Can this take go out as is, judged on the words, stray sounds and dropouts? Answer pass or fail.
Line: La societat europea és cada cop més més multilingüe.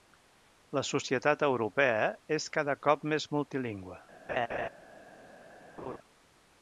fail